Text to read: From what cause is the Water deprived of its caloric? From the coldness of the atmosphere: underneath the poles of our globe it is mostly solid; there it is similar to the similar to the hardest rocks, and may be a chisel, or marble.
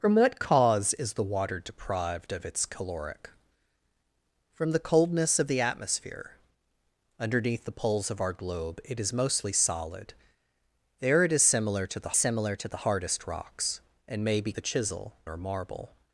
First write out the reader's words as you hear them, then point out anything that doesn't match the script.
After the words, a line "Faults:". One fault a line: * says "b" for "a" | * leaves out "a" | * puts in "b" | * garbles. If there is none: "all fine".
From what cause is the Water deprived of its caloric? From the coldness of the atmosphere: underneath the poles of our globe it is mostly solid; there it is similar to the similar to the hardest rocks, and may be a chisel, or marble.
Faults:
all fine